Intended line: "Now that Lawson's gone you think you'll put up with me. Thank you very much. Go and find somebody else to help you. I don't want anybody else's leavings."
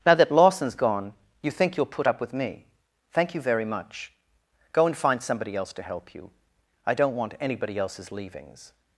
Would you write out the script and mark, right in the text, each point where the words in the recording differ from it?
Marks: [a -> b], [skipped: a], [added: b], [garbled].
"Now that Lawson's gone you think you'll put up with me. Thank you very much. Go and find somebody else to help you. I don't want anybody else's leavings."